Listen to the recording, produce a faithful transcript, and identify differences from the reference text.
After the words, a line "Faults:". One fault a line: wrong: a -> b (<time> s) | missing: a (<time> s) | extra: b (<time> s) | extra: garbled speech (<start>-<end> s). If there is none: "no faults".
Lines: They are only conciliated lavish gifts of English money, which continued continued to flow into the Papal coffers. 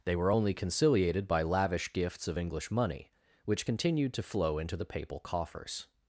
They were only conciliated by lavish gifts of English money, which continued to flow into the Papal coffers.
Faults:
wrong: are -> were (0.1 s)
extra: by (1.3 s)
missing: continued (4.1 s)